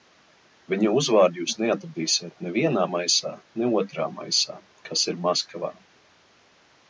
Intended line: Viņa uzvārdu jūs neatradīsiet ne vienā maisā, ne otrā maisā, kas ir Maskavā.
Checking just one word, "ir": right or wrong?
right